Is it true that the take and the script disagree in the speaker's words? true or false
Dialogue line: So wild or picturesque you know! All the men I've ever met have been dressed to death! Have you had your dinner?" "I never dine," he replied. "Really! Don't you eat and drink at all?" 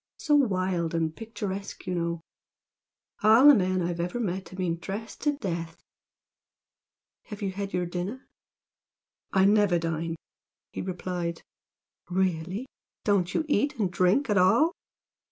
true